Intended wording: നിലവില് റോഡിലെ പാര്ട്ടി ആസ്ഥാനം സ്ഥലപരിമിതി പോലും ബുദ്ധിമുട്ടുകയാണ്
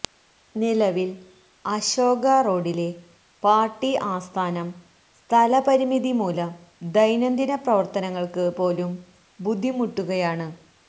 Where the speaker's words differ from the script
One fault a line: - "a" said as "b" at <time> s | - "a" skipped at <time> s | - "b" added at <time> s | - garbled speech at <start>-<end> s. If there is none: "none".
- "അശോക" added at 1.6 s
- "മൂലം ദൈനംദിന പ്രവര്ത്തനങ്ങള്ക്ക്" added at 6.2 s